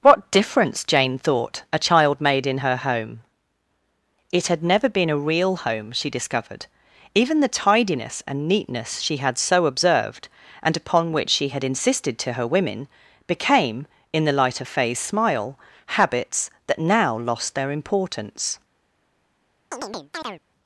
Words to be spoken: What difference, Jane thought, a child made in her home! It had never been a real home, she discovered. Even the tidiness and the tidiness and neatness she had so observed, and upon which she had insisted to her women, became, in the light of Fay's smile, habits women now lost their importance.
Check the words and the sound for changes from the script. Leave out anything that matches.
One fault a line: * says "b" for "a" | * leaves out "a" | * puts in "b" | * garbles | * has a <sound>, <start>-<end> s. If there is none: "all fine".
* leaves out "the tidiness and"
* says "that" for "women"
* has a chirp, 19.7-20.4 s